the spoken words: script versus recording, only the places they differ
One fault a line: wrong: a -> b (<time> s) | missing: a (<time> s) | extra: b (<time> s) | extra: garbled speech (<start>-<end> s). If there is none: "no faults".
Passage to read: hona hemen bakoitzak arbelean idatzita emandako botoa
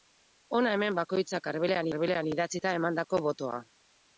extra: arbelean (1.9 s)